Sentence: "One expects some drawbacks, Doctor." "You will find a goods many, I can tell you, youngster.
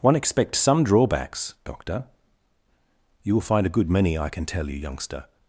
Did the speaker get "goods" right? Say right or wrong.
wrong